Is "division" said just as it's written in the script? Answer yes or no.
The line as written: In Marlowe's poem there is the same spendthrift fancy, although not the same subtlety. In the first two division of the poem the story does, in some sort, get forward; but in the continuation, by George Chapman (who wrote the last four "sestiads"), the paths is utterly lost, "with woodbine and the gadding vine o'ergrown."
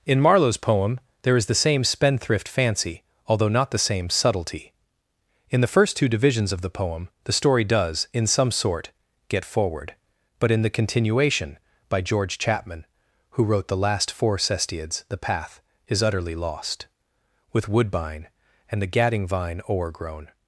no